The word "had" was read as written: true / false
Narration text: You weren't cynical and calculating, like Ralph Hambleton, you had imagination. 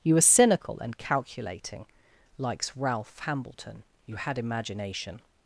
true